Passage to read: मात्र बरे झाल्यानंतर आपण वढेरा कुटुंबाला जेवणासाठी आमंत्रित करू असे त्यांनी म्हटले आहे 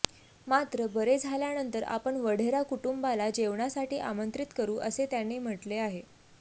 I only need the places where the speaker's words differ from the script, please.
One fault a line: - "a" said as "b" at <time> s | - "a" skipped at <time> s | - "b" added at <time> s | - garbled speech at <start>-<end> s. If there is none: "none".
none